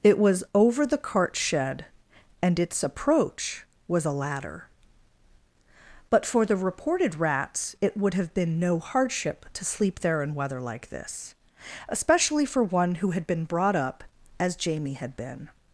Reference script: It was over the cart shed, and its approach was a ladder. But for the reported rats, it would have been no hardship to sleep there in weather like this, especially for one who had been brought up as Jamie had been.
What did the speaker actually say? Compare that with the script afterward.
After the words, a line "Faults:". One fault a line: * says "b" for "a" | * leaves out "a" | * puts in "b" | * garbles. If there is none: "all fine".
It was over the cart shed, and its approach was a ladder. But for the reported rats, it would have been no hardship to sleep there in weather like this, especially for one who had been brought up as Jamie had been.
Faults:
all fine